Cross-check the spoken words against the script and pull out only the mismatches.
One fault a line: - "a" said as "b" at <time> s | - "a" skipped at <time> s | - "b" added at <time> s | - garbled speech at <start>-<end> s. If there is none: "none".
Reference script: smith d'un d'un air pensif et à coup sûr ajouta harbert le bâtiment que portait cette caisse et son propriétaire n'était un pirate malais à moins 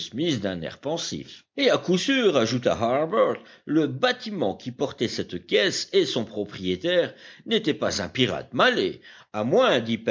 - "d'un" skipped at 0.6 s
- "que" said as "qui" at 4.5 s
- "pas" added at 7.7 s